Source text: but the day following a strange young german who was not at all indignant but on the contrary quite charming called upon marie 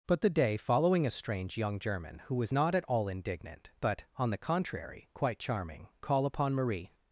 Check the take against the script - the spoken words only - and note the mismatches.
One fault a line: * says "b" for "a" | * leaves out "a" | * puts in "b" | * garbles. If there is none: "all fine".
* says "call" for "called"